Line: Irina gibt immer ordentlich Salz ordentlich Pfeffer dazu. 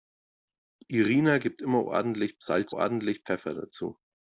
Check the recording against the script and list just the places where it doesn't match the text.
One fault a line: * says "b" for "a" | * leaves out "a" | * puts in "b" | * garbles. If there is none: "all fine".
all fine